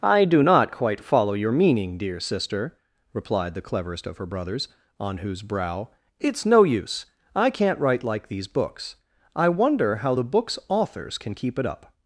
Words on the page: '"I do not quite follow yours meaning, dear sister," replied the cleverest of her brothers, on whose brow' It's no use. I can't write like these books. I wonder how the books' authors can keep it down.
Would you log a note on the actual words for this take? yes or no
yes